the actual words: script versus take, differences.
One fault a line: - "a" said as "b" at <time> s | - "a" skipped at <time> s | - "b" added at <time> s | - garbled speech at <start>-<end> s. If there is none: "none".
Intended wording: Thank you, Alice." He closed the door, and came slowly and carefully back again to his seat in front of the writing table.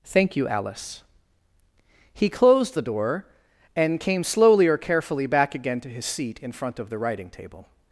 - "and" said as "or" at 4.7 s